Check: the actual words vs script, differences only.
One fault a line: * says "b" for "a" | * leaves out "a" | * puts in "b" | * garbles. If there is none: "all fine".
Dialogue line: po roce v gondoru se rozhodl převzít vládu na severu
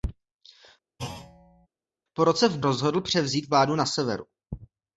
* leaves out "gondoru se"